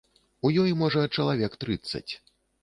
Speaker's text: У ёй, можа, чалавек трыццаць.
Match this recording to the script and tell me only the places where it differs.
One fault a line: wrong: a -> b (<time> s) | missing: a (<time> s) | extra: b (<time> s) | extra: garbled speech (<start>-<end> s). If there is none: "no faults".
no faults